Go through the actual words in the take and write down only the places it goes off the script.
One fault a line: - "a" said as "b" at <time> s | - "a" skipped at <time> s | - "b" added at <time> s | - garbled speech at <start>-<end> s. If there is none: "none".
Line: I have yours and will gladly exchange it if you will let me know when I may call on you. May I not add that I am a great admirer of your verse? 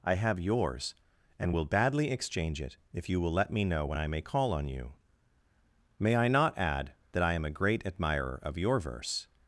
- "gladly" said as "badly" at 1.7 s